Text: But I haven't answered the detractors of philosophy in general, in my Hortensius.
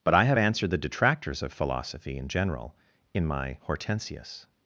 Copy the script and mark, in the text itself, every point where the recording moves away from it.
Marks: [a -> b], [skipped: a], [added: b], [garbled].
But I [haven't -> have] answered the detractors of philosophy in general, in my Hortensius.